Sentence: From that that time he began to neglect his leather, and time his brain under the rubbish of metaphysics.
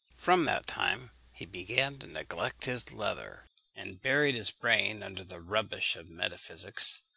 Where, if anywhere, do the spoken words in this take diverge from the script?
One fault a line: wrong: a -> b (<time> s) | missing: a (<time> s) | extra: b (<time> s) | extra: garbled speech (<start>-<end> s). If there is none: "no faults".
missing: that (0.6 s)
wrong: time -> buried (4.0 s)